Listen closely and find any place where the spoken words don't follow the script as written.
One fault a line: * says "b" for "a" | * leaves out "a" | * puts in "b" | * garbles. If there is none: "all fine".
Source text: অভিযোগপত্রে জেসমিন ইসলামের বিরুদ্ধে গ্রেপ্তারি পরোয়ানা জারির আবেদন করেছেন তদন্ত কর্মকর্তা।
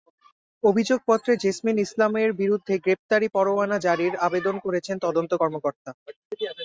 all fine